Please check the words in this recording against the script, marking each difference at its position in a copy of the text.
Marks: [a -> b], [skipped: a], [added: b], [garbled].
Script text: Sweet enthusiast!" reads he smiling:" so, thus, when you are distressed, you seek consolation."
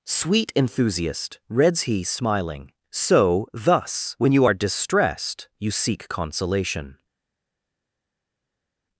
Sweet enthusiast!" reads he smiling:" so, thus, when you are distressed, you seek consolation."